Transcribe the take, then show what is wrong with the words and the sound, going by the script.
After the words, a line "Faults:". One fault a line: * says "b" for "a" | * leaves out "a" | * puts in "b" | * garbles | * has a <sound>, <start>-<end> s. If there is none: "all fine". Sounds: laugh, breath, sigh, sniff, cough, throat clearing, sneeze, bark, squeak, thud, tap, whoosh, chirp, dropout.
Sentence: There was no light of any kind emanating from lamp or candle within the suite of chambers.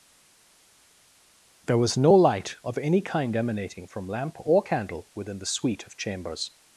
There was no light of any kind emanating from lamp or candle within the suite of chambers.
Faults:
all fine